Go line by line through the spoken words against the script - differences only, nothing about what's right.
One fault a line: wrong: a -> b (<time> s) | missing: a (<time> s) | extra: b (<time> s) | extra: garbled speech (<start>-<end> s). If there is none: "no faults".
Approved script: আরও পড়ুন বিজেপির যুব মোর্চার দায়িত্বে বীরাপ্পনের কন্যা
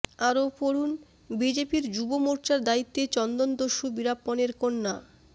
extra: চন্দনদস্যু (3.1 s)